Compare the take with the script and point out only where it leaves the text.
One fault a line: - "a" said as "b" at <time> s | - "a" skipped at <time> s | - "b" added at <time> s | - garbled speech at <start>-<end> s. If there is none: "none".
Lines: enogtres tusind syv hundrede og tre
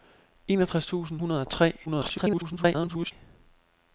- "syv" skipped at 1.2 s
- garbled speech at 1.9-3.1 s